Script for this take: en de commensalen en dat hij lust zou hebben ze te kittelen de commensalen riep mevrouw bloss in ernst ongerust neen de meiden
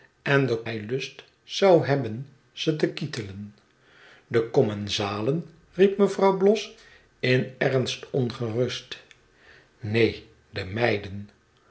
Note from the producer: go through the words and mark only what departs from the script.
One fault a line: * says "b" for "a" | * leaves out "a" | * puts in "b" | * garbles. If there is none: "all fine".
* leaves out "commensalen en dat"